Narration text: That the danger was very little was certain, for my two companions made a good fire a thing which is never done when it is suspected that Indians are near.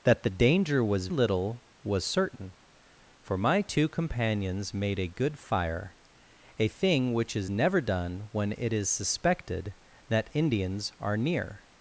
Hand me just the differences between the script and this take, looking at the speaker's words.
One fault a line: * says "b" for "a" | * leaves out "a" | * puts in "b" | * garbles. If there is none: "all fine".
* leaves out "very"